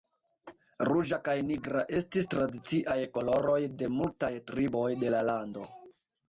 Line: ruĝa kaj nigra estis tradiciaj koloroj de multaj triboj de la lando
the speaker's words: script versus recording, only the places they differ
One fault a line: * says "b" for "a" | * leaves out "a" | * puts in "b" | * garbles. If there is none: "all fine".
all fine